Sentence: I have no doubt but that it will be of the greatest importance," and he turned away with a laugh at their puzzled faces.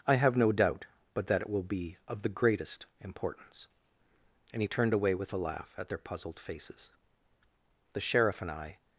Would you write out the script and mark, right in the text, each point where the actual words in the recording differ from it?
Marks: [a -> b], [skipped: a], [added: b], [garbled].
I have no doubt but that it will be of the greatest importance," and he turned away with a laugh at their puzzled faces. [added: The sheriff and I]